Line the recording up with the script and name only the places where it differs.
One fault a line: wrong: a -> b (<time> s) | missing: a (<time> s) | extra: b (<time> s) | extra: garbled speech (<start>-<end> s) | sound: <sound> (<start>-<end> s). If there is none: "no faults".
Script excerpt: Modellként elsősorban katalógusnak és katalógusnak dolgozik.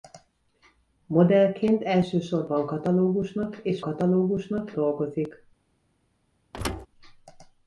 sound: thud (6.5-6.9 s)